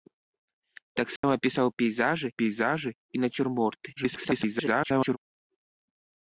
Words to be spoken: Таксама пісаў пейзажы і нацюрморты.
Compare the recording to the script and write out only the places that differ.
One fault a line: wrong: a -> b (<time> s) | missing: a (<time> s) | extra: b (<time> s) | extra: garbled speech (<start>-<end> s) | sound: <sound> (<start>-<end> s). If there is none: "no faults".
sound: dropout (1.2-1.2 s)
extra: пейзажы (2.4 s)
extra: garbled speech (4.0-5.2 s)